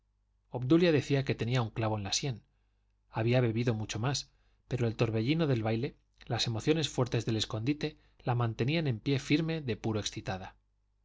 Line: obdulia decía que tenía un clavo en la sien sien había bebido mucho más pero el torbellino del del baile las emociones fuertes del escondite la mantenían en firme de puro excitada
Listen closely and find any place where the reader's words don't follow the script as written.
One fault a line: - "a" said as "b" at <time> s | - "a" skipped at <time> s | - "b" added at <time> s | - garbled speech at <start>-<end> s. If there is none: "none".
- "sien" skipped at 2.4 s
- "del" skipped at 5.6 s
- "pie" added at 9.0 s